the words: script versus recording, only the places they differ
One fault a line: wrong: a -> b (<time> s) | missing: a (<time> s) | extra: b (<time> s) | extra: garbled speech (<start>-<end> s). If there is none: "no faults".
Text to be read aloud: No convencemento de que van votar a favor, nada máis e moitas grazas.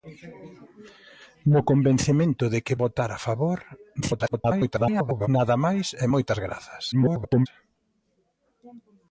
missing: van (2.8 s)
extra: garbled speech (4.0-5.3 s)
extra: garbled speech (6.9-7.5 s)